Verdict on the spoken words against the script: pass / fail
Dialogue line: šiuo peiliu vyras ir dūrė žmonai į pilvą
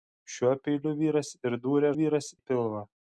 fail